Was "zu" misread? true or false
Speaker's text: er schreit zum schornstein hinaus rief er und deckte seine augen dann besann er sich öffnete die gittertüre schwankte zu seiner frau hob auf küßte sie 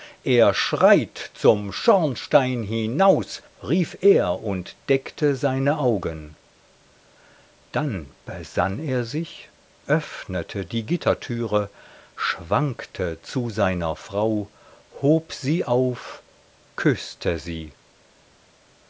false